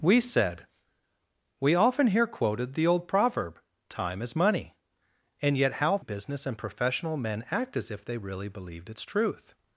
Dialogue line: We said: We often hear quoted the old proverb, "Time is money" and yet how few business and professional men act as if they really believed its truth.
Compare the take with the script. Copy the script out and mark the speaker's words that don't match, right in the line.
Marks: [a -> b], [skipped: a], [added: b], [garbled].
We said: We often hear quoted the old proverb, "Time is money" and yet how [skipped: few] business and professional men act as if they really believed its truth.